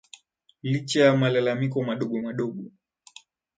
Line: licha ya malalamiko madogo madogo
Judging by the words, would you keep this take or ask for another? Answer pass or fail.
pass